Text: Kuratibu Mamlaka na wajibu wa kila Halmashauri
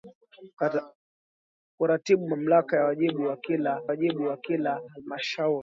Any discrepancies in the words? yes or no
yes